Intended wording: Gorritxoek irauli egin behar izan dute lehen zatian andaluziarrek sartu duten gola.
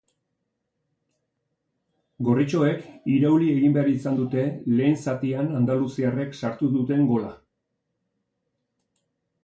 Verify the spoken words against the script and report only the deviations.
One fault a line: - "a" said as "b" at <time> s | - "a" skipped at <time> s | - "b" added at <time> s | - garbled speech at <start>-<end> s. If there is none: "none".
none